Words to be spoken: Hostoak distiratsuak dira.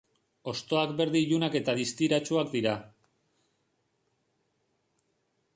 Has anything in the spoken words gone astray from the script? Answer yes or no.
yes